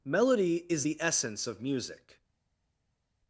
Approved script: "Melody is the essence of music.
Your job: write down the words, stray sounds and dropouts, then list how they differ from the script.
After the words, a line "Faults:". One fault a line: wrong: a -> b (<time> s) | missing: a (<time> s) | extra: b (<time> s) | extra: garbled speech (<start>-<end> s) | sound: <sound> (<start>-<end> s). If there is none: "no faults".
"Melody is the essence of music.
Faults:
no faults